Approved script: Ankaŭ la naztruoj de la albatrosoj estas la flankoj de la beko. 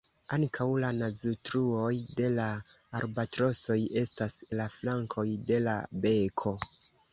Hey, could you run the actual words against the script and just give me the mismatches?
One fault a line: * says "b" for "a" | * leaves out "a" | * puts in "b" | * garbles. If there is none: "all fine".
all fine